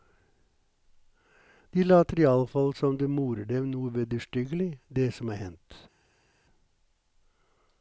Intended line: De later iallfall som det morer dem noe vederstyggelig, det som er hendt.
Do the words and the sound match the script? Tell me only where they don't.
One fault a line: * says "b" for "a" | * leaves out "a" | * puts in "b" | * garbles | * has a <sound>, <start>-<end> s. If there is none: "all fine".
all fine